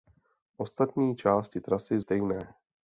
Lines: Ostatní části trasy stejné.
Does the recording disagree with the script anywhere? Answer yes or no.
no